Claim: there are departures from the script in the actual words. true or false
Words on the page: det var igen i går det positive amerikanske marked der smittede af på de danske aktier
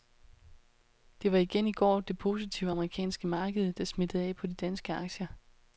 false